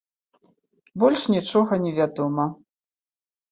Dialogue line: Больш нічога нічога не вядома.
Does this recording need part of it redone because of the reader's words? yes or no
yes